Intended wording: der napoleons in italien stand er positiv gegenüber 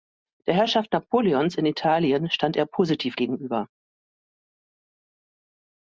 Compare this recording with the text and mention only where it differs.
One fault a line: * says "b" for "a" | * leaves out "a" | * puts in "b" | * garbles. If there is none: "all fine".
* puts in "herrschaft"